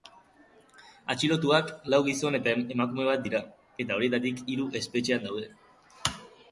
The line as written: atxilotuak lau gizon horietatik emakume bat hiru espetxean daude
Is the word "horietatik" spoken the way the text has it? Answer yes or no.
no